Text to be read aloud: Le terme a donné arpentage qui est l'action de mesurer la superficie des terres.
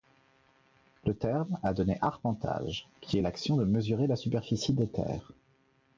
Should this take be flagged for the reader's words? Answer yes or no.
no